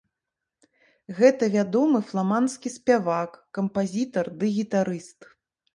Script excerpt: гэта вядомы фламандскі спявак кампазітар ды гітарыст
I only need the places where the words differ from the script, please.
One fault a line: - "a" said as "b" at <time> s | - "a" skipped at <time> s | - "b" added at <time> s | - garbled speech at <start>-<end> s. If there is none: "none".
none